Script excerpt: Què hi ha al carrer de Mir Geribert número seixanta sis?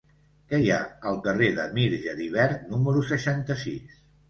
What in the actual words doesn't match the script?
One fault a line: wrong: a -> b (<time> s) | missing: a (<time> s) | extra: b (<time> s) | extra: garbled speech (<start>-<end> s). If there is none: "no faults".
no faults